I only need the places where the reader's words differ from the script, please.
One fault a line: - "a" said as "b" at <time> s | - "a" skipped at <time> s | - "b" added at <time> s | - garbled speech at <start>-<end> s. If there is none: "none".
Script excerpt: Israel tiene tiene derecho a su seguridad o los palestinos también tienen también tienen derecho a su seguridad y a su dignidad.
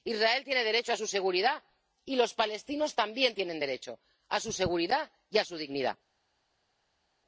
- "tiene" skipped at 0.6 s
- "o" said as "y" at 2.0 s
- "también tienen" skipped at 3.6 s